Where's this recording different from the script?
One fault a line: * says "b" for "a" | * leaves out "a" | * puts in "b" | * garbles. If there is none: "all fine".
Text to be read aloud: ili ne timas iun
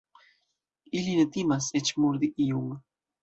* puts in "eĉ murdi"